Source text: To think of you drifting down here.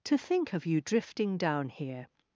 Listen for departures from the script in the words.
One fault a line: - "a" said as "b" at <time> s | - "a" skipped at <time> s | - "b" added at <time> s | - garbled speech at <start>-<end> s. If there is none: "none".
none